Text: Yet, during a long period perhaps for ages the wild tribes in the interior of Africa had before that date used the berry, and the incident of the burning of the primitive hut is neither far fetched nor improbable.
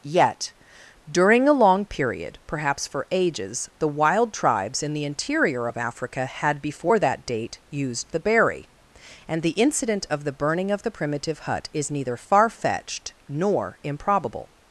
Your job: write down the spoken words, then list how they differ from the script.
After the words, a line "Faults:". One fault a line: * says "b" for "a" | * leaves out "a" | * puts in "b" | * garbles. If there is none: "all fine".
Yet, during a long period perhaps for ages the wild tribes in the interior of Africa had before that date used the berry, and the incident of the burning of the primitive hut is neither far fetched nor improbable.
Faults:
all fine